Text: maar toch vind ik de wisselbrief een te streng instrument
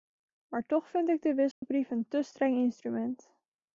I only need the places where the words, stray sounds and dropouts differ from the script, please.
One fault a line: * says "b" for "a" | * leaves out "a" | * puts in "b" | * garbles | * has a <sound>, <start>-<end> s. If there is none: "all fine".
* has a dropout, 1.5-1.6 s